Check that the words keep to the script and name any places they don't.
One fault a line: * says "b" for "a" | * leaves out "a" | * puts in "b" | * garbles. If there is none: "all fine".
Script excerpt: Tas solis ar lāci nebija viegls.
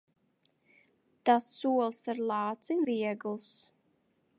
* leaves out "nebija"